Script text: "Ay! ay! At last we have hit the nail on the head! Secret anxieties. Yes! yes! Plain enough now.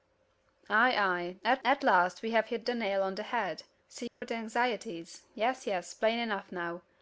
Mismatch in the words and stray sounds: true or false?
true